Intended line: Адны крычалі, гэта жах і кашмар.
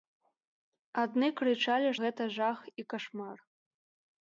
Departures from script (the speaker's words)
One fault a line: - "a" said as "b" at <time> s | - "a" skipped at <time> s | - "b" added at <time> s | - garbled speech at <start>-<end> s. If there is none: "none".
none